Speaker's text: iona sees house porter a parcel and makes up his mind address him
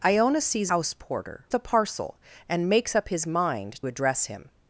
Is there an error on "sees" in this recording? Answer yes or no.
no